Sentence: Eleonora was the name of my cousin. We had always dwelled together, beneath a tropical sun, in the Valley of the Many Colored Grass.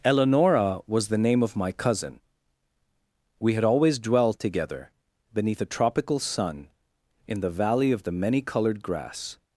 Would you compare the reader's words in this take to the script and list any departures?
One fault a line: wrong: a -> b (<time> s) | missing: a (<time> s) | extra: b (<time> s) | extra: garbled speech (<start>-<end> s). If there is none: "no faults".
no faults